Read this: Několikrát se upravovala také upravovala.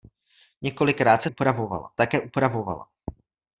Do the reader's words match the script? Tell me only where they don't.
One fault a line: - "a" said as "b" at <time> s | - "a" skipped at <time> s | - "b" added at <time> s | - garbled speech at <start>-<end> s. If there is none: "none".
none